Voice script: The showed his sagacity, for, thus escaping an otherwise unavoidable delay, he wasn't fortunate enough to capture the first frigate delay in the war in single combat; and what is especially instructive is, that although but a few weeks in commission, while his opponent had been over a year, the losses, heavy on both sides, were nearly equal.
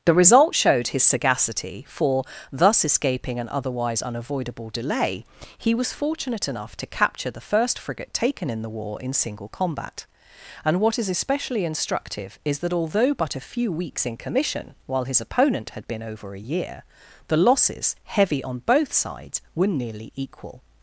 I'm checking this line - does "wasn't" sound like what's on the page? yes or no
no